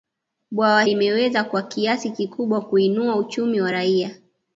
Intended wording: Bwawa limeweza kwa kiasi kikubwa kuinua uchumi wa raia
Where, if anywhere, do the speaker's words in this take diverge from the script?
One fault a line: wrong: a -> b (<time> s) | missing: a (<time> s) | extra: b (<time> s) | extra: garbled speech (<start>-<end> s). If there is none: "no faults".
no faults